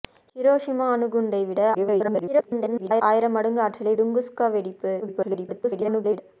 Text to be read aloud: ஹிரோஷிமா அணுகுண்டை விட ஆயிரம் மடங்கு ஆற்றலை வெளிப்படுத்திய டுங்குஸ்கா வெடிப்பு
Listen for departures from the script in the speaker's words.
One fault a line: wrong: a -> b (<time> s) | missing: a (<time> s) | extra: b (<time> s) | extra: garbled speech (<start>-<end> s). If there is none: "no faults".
extra: garbled speech (1.7-3.0 s)
missing: வெளிப்படுத்திய (3.9 s)
extra: garbled speech (5.0-6.2 s)